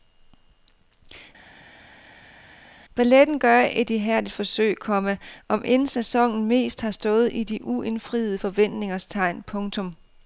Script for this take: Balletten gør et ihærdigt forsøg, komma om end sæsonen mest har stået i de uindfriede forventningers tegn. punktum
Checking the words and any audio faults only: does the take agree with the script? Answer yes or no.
yes